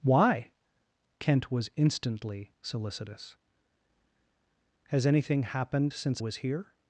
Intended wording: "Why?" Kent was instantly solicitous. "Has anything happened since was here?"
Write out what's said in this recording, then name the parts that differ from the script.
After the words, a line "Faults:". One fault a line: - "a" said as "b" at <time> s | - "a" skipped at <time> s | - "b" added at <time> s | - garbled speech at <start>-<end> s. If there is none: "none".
"Why?" Kent was instantly solicitous. "Has anything happened since was here?"
Faults:
none